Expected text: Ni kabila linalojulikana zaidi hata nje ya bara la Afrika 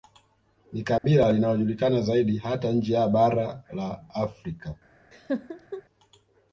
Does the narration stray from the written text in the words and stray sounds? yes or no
yes